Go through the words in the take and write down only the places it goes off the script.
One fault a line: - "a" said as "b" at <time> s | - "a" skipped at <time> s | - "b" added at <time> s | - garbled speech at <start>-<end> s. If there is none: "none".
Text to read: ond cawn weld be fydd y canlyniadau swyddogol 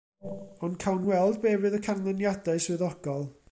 none